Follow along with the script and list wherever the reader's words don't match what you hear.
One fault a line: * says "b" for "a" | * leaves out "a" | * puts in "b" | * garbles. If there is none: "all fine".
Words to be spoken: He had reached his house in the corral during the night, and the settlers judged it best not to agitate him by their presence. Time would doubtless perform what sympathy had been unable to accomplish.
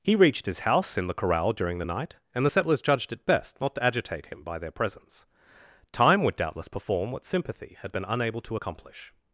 * leaves out "had"